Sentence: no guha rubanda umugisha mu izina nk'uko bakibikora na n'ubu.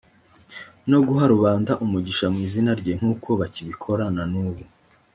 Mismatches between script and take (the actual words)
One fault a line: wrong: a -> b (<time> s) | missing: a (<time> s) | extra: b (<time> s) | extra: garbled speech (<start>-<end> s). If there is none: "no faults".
extra: rye (2.8 s)